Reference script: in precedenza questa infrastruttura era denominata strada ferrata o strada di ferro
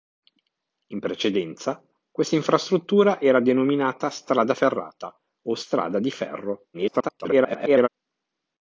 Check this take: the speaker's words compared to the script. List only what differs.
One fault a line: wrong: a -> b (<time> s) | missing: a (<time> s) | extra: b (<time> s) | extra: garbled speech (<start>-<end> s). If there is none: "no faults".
extra: garbled speech (6.7-7.9 s)